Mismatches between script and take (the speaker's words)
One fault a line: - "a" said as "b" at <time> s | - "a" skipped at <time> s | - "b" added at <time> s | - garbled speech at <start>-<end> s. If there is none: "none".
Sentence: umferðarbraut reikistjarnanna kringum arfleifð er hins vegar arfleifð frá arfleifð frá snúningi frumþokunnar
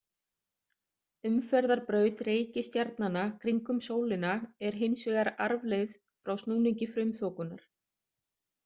- "arfleifð" said as "sólina" at 3.9 s
- "arfleifð frá" skipped at 6.4 s